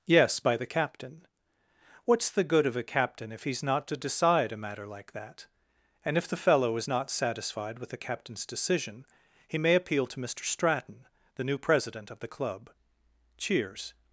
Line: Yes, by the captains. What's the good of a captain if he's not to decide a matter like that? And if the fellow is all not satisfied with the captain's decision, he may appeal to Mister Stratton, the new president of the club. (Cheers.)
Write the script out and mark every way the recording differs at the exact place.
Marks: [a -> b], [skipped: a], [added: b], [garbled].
Yes, by the [captains. -> captain] What's the good of a captain if he's not to decide a matter like that? And if the fellow is [skipped: all] not satisfied with the captain's decision, he may appeal to Mister Stratton, the new president of the club. (Cheers.)